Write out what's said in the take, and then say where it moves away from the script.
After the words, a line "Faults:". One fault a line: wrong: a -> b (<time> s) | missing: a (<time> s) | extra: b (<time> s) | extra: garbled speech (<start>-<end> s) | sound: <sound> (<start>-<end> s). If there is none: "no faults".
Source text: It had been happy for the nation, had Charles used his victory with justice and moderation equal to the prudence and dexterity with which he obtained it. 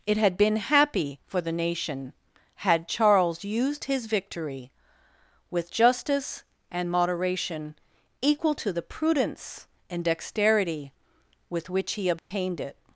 It had been happy for the nation, had Charles used his victory with justice and moderation equal to the prudence and dexterity with which he obtained it.
Faults:
sound: dropout (12.2-12.3 s)